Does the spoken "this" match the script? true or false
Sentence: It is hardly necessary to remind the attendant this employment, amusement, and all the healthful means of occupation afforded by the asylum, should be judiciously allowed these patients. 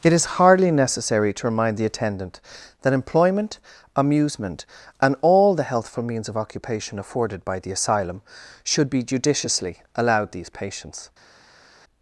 false